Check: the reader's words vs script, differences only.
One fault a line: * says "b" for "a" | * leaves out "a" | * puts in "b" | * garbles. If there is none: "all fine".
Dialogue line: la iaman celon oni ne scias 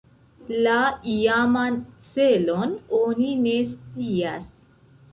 all fine